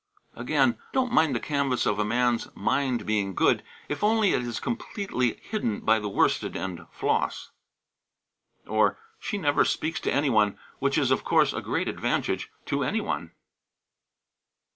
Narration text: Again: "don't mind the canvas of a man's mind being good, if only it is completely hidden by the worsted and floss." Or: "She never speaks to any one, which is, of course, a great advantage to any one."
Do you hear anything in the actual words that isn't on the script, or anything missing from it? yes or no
no